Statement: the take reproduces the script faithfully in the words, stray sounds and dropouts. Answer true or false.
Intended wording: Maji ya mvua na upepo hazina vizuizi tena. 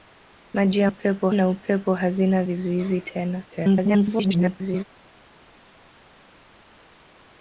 false